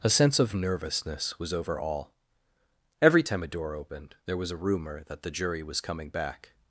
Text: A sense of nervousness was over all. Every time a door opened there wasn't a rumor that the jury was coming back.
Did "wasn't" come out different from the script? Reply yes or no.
yes